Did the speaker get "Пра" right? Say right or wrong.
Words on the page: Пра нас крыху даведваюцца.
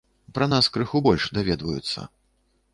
right